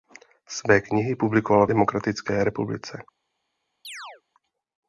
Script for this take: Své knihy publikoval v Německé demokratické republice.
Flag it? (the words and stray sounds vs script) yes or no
yes